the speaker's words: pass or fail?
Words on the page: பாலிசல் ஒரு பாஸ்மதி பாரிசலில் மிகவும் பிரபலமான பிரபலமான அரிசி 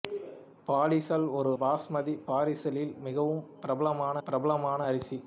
pass